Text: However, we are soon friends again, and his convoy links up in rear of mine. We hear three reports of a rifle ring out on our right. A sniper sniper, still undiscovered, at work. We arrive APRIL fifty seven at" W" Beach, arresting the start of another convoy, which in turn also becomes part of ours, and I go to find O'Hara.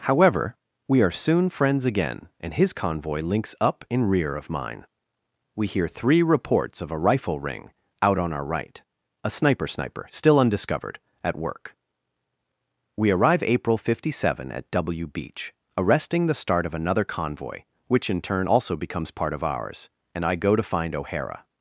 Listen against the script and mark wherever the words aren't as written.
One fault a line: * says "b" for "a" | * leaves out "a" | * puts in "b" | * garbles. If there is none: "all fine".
all fine